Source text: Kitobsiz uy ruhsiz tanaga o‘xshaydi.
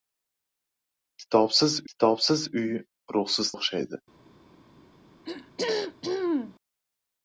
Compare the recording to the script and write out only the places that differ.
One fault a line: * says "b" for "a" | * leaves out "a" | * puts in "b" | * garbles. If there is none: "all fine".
* puts in "kitobsiz"
* leaves out "tanaga"